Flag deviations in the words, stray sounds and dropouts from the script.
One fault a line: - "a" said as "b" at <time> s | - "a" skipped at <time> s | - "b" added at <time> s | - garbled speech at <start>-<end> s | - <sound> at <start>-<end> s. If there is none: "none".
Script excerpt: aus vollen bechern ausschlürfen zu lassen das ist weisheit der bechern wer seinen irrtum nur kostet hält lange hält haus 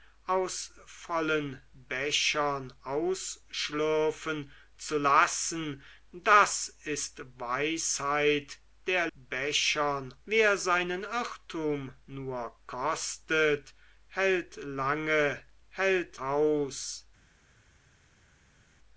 none